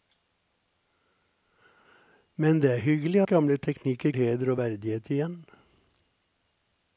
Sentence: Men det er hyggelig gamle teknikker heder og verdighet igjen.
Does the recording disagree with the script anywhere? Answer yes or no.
no